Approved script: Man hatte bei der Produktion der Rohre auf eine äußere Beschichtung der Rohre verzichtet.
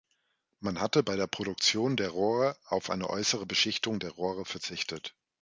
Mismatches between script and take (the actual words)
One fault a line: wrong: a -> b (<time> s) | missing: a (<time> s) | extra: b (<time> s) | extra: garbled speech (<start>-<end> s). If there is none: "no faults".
no faults